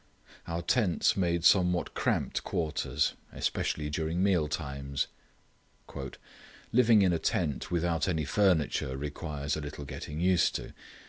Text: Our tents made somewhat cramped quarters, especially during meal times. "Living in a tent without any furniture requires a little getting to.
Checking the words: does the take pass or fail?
fail